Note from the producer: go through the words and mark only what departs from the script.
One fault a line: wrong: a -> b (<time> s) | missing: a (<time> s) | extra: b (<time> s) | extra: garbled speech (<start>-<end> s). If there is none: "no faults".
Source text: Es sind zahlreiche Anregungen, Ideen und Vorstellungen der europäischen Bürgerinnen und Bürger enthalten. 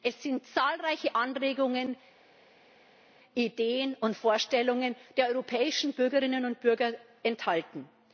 no faults